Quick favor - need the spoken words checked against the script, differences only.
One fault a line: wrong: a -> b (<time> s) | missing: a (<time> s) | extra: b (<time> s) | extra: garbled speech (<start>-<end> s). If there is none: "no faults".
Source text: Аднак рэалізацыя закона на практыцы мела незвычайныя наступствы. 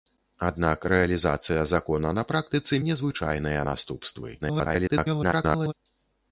missing: мела (2.8 s)
extra: garbled speech (4.4-5.7 s)